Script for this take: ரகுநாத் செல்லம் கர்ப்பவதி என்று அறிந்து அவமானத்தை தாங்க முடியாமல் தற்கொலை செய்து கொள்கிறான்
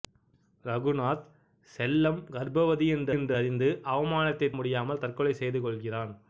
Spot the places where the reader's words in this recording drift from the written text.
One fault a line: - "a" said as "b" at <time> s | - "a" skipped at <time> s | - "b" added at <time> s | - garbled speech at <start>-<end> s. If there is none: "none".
- "என்று" added at 3.2 s
- "தாங்க" skipped at 4.5 s